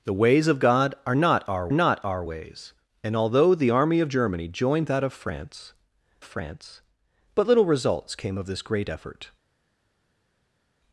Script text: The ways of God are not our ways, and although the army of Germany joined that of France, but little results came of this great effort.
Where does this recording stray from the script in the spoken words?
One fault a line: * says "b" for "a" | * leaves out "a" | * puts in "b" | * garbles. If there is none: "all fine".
* puts in "not our"
* puts in "France"